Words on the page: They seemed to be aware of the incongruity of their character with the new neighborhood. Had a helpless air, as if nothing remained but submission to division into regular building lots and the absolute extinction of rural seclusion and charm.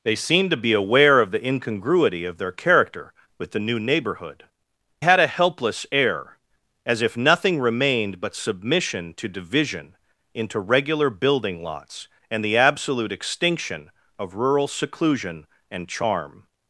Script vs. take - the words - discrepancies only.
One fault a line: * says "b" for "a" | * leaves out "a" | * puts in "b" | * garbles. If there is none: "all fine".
all fine